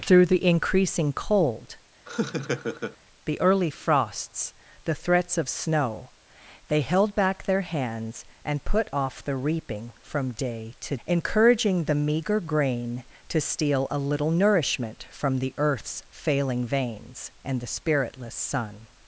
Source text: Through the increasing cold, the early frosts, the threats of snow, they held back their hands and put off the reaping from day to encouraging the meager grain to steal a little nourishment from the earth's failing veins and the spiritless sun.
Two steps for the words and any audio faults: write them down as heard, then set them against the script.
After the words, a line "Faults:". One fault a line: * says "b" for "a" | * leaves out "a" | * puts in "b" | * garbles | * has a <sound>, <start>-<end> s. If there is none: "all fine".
Through the increasing cold, the early frosts, the threats of snow, they held back their hands and put off the reaping from day to encouraging the meager grain to steal a little nourishment from the earth's failing veins and the spiritless sun.
Faults:
* has a laugh, 2.1-3.0 s